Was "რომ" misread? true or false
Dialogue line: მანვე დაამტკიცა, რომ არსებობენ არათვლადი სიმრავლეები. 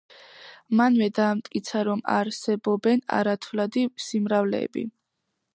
false